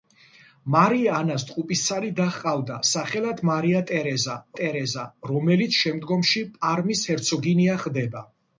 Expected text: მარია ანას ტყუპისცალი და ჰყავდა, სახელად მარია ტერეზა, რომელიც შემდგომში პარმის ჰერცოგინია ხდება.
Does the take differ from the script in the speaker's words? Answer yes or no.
yes